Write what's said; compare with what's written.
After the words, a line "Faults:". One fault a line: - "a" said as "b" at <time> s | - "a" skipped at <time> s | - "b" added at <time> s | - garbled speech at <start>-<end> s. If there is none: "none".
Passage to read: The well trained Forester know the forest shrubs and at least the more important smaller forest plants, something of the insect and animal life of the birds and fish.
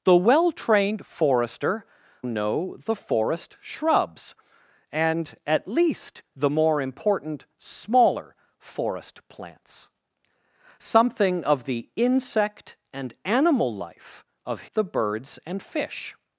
The well trained Forester know the forest shrubs and at least the more important smaller forest plants, something of the insect and animal life of the birds and fish.
Faults:
none